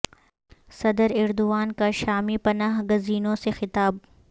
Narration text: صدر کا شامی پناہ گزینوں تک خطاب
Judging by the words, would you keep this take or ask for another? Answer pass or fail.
fail